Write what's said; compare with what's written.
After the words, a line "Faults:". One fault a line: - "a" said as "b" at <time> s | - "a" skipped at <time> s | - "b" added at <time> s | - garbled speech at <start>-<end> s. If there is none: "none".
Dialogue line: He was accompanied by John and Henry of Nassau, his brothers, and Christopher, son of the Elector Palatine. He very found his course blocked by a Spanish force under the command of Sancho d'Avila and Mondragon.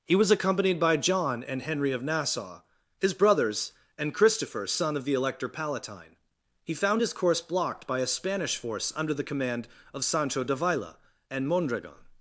He was accompanied by John and Henry of Nassau, his brothers, and Christopher, son of the Elector Palatine. He found his course blocked by a Spanish force under the command of Sancho d'Avila and Mondragon.
Faults:
- "very" skipped at 6.7 s